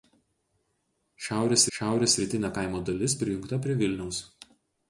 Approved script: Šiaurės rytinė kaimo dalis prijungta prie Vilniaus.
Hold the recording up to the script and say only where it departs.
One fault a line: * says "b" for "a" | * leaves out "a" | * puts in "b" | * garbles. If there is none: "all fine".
* puts in "šiaurės"